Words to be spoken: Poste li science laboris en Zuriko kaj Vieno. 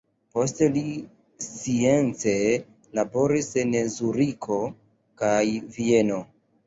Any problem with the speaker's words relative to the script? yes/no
no